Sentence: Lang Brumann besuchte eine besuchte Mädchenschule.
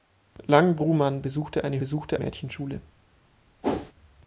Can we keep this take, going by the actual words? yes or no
yes